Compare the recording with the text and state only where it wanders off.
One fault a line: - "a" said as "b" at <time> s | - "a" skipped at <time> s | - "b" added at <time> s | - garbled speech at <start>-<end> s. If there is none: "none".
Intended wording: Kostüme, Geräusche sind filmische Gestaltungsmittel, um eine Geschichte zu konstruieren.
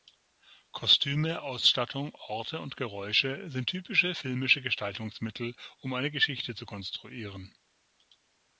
- "Ausstattung Orte und" added at 1.4 s
- "typische" added at 3.7 s